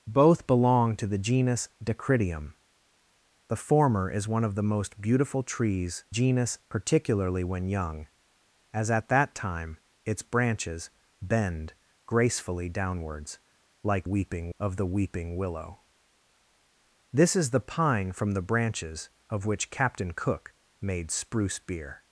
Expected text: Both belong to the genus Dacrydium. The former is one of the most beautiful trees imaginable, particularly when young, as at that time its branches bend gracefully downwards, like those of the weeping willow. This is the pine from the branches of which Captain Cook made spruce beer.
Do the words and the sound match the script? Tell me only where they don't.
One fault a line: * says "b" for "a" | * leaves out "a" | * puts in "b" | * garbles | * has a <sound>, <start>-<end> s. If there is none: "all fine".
* says "genus" for "imaginable"
* says "weeping" for "those"